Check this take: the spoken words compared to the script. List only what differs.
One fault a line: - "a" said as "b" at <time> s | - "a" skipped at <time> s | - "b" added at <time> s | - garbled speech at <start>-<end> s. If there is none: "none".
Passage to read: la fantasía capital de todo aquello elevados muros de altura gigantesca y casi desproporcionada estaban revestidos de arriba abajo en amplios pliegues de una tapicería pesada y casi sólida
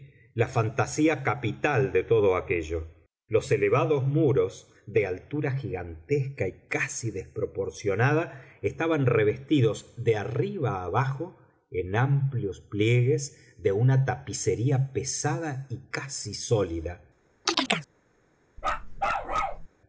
- "los" added at 3.3 s